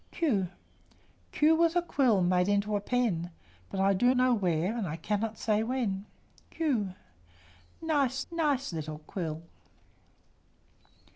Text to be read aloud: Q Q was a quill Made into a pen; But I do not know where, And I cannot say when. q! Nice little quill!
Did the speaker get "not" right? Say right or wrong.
wrong